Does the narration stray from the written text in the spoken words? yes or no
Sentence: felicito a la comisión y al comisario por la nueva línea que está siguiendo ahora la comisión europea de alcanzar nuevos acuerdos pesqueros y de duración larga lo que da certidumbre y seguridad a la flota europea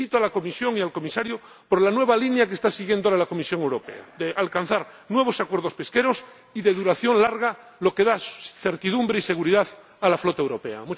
no